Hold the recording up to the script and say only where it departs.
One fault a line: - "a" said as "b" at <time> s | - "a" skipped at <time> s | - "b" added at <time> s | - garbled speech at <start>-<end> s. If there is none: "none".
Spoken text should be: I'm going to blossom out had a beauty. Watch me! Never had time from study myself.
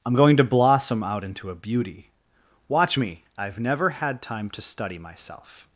- "had" said as "into" at 1.2 s
- "I've" added at 3.3 s
- "from" said as "to" at 4.5 s